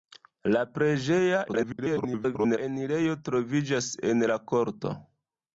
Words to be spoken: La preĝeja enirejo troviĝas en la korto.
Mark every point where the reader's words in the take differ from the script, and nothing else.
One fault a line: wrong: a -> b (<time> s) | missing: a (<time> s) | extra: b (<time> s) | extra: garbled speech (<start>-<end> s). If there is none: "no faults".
extra: garbled speech (1.5-2.6 s)